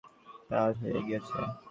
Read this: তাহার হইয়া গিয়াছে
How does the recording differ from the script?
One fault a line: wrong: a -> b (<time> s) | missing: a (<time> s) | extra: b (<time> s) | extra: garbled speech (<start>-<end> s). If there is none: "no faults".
no faults